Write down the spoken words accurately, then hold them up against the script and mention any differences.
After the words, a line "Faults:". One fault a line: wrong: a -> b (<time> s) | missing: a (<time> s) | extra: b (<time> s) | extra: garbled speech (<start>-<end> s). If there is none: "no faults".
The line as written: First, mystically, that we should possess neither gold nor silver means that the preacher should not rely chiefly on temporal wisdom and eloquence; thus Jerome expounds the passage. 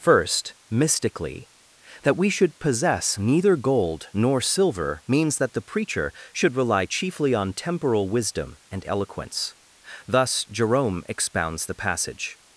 First, mystically, that we should possess neither gold nor silver means that the preacher should rely chiefly on temporal wisdom and eloquence; thus Jerome expounds the passage.
Faults:
missing: not (6.5 s)